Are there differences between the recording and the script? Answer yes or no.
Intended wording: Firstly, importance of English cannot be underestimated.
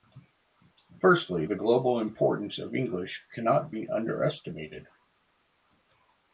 yes